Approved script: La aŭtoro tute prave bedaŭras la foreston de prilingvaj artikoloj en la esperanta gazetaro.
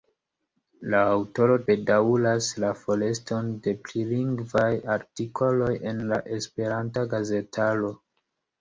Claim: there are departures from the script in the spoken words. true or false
true